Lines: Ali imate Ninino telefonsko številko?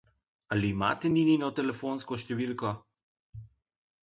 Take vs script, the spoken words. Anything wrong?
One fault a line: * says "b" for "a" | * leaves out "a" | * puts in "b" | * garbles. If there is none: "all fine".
all fine